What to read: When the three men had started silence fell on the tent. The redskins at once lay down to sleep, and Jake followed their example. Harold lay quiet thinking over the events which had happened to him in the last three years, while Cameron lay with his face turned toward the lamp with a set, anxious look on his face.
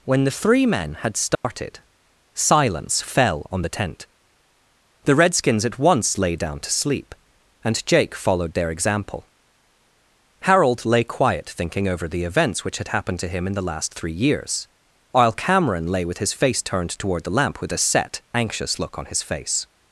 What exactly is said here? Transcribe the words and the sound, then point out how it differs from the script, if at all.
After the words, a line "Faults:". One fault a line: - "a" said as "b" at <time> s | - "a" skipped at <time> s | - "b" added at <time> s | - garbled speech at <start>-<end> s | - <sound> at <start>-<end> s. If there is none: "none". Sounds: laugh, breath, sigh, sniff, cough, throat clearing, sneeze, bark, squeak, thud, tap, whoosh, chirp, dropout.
When the three men had started silence fell on the tent. The redskins at once lay down to sleep, and Jake followed their example. Harold lay quiet thinking over the events which had happened to him in the last three years, while Cameron lay with his face turned toward the lamp with a set, anxious look on his face.
Faults:
- dropout at 1.3-1.4 s